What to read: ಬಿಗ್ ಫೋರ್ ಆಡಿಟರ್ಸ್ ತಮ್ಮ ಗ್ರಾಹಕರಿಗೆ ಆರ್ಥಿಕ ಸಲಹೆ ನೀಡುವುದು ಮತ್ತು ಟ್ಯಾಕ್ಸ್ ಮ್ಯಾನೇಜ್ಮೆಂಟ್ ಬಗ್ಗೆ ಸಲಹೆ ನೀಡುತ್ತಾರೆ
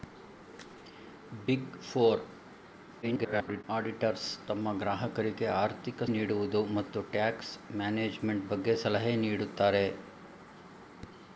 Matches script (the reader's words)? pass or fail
fail